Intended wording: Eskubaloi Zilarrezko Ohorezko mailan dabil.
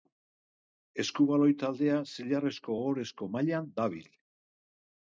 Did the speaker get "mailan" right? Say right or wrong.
right